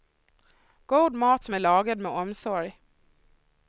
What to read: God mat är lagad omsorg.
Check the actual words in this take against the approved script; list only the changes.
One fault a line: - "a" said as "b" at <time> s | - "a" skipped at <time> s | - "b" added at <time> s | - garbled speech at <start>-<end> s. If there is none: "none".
- "som" added at 1.4 s
- "med" added at 2.0 s